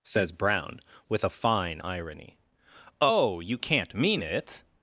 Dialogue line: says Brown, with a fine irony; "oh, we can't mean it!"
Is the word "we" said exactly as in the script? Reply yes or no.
no